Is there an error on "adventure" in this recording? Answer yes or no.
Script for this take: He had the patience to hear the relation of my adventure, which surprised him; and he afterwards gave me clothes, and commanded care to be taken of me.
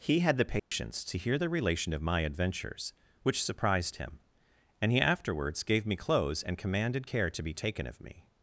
yes